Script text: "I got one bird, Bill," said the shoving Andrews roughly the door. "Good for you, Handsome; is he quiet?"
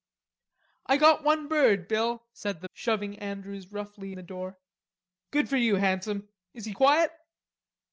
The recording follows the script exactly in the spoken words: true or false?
true